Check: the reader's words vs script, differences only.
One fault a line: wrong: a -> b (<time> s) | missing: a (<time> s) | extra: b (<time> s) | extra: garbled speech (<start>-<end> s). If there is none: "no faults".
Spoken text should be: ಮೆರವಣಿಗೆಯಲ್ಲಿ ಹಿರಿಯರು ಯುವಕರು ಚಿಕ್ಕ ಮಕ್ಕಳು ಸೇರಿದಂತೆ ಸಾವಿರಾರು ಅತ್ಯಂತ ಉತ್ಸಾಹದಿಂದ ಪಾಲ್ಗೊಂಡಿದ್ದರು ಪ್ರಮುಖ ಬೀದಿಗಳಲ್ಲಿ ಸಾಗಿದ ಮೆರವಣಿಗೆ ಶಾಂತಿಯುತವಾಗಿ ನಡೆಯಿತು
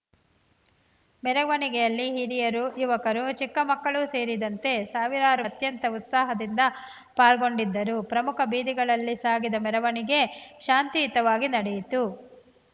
no faults